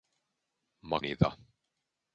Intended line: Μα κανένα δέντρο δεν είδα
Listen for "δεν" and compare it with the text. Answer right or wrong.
wrong